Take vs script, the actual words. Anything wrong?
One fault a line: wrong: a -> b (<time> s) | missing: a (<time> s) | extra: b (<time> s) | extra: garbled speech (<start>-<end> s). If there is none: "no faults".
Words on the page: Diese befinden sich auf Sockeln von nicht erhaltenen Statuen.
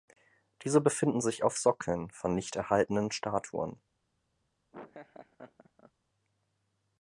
no faults